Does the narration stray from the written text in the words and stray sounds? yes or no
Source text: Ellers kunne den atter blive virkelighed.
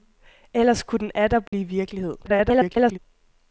yes